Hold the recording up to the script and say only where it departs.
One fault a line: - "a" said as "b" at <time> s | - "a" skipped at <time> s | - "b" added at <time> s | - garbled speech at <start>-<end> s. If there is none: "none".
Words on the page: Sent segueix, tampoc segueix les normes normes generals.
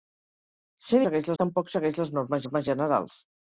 none